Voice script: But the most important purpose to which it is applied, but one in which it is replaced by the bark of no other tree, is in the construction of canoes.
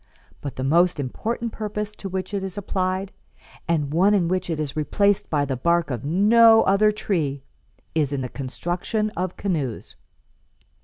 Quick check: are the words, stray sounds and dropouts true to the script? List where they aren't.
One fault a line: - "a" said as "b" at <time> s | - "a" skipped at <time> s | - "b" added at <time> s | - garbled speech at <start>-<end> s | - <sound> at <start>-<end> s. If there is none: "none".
- "but" said as "and" at 3.7 s